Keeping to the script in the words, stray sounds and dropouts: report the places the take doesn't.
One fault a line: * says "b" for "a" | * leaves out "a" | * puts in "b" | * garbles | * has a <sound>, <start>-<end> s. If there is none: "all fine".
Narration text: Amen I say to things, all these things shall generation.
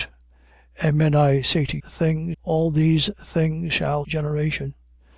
all fine